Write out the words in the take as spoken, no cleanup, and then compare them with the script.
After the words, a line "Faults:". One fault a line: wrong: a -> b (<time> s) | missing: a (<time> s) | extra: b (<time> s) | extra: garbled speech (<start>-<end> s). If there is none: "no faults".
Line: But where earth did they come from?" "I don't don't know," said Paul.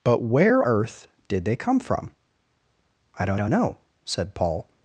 But where earth did they come from?" "I don't don't know," said Paul.
Faults:
no faults